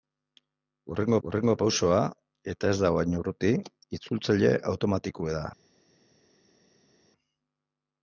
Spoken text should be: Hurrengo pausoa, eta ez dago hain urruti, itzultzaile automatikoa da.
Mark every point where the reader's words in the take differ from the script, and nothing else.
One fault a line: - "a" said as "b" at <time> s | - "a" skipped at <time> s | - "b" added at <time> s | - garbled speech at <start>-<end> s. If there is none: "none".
- "hurrengo" added at 1.3 s